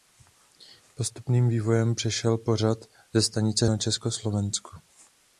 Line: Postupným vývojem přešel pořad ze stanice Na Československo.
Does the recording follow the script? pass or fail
pass